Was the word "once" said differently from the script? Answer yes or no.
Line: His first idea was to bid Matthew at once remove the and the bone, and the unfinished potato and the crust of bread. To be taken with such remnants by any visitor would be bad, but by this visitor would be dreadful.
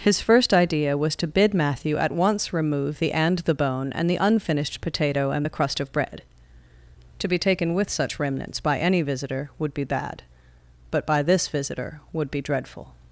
no